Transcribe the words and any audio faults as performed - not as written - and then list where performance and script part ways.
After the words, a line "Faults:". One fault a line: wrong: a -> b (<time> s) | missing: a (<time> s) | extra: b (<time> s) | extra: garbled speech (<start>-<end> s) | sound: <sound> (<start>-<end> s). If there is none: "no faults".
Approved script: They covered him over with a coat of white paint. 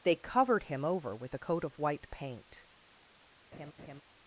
They covered him over with a coat of white paint.
Faults:
sound: laugh (3.5-4.0 s)